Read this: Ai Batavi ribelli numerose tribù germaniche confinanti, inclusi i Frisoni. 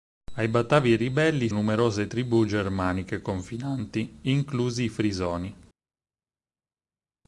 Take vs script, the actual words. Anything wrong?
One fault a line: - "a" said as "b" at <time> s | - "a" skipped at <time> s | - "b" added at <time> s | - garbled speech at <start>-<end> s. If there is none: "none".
none